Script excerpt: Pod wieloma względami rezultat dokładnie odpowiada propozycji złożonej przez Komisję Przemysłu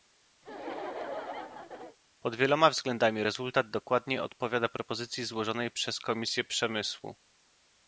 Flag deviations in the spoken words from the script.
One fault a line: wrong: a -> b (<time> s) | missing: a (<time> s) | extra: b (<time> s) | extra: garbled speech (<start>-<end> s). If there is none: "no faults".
no faults